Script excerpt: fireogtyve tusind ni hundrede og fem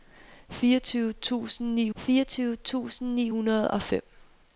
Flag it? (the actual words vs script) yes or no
yes